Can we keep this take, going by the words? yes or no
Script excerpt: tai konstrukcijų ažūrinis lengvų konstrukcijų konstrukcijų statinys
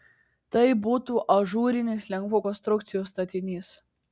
no